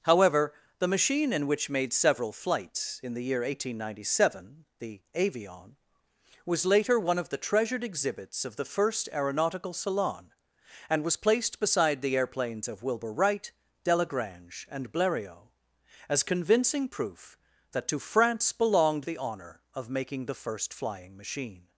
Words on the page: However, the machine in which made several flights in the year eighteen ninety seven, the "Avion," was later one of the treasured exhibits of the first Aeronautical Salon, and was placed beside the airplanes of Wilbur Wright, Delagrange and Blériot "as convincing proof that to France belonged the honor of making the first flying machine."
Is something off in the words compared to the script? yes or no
no